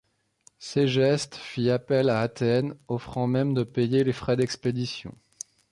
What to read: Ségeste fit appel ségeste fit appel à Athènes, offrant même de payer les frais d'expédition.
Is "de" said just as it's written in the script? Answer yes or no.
yes